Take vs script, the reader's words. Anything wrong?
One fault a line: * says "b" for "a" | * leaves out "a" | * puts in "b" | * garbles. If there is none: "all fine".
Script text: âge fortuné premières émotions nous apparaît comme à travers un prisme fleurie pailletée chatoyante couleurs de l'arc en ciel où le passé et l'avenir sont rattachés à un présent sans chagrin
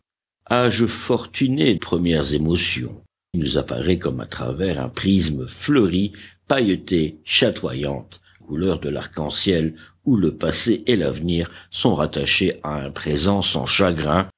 all fine